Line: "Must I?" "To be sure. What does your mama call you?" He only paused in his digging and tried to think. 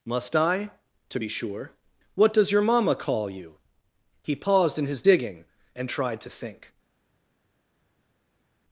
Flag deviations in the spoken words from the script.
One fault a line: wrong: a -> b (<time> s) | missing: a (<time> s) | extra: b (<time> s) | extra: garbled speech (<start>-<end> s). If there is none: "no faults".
missing: only (4.4 s)